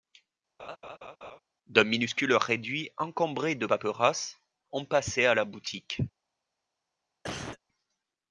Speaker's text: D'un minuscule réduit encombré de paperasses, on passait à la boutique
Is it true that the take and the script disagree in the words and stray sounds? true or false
true